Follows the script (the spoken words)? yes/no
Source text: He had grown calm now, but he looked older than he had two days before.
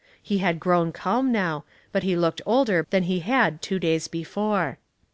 yes